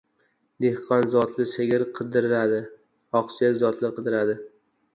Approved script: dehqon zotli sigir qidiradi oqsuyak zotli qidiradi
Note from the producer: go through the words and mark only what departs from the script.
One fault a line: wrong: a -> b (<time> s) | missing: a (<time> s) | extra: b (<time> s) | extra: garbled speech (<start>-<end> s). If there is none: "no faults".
no faults